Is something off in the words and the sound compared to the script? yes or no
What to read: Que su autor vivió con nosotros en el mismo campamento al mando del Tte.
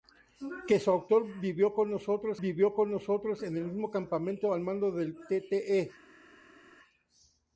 yes